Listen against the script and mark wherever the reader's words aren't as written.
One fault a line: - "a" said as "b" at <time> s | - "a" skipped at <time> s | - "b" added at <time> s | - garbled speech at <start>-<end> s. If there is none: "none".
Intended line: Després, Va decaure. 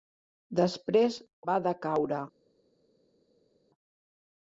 none